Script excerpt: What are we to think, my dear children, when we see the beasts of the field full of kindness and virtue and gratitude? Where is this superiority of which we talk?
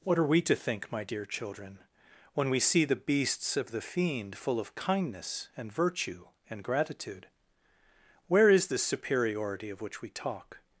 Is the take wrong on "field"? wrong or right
wrong